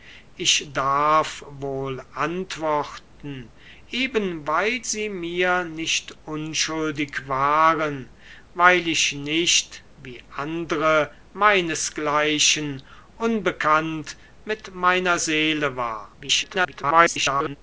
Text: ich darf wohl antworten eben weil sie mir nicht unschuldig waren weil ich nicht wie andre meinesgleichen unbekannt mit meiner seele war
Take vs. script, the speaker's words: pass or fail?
fail